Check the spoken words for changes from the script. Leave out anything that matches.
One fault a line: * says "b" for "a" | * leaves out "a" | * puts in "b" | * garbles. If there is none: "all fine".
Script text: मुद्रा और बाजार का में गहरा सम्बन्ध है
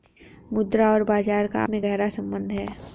all fine